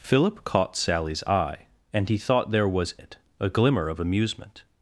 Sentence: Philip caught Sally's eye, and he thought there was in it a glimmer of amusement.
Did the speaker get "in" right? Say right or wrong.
wrong